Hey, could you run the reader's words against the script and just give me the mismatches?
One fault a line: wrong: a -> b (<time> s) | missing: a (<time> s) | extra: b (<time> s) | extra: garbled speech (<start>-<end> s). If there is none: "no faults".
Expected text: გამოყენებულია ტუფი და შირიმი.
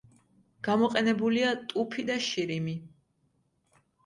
no faults